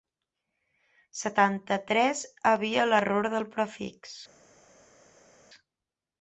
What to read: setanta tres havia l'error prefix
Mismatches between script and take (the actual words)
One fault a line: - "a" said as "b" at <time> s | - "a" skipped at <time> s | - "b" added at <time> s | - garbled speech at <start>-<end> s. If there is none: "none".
- "del" added at 3.4 s